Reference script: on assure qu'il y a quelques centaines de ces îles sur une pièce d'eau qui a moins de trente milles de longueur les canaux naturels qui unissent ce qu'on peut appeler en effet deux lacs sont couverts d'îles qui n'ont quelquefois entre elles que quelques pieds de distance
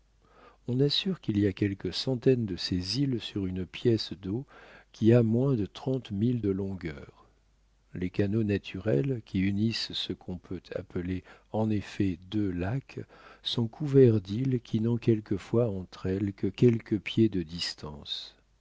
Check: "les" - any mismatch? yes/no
no